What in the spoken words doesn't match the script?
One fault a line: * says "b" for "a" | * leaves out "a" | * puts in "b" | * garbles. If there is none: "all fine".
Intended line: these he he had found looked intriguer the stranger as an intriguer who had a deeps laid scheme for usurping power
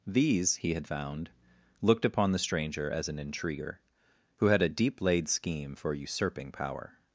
* leaves out "he"
* says "upon" for "intriguer"
* says "deep" for "deeps"